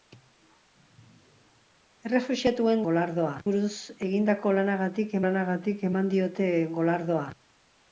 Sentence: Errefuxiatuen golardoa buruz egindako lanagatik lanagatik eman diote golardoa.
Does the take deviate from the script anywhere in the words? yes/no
no